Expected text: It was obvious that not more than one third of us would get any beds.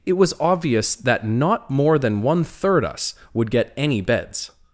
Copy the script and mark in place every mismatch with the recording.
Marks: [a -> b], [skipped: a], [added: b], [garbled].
It was obvious that not more than one third [skipped: of] us would get any beds.